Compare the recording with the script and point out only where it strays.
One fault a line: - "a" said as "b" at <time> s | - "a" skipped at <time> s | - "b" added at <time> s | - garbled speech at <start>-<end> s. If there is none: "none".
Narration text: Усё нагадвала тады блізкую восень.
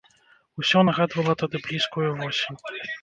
none